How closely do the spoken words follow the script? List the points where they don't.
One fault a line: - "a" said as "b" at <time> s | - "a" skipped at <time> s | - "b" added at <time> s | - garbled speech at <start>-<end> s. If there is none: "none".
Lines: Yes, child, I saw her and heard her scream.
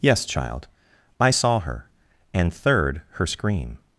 - "heard" said as "third" at 2.5 s